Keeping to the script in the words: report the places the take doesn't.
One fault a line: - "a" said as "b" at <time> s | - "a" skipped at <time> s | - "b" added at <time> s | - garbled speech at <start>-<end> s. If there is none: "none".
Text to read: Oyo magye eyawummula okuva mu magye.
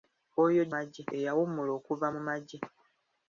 none